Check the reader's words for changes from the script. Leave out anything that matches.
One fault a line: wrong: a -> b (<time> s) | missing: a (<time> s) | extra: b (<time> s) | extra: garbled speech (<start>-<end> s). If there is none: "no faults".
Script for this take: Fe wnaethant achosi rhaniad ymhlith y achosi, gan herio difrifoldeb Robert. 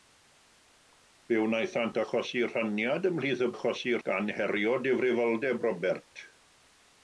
no faults